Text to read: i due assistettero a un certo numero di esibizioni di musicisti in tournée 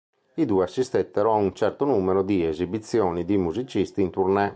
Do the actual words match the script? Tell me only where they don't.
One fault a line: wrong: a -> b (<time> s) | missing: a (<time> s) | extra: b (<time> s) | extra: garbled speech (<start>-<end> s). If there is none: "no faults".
no faults